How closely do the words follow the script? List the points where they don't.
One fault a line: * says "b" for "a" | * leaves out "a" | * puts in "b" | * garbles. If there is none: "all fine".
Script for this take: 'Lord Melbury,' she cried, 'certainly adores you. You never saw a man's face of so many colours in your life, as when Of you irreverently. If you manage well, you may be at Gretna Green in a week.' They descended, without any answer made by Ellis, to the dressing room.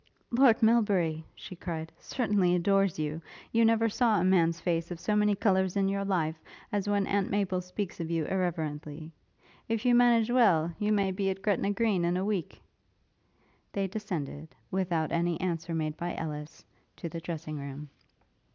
* puts in "Aunt Maple speaks"